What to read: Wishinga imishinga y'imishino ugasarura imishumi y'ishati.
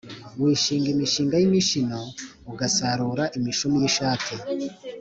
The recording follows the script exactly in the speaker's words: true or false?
true